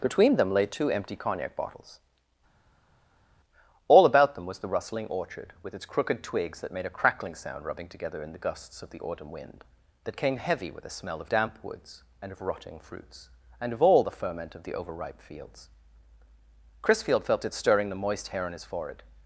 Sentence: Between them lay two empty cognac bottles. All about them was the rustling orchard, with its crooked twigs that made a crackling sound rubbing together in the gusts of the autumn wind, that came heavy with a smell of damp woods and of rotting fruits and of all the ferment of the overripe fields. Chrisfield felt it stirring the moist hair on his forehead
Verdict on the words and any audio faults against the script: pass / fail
pass